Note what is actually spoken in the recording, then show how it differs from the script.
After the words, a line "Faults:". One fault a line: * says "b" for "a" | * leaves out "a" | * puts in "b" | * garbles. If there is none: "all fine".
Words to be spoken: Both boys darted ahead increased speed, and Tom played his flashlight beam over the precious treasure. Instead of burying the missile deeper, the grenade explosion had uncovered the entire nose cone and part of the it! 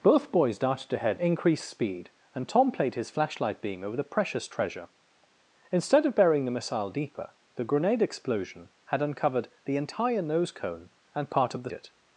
Both boys darted ahead increased speed, and Tom played his flashlight beam over the precious treasure. Instead of burying the missile deeper, the grenade explosion had uncovered the entire nose cone and part of the it!
Faults:
all fine